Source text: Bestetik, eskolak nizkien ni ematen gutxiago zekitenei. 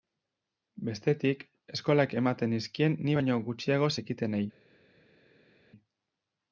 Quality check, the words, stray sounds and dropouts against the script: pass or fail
fail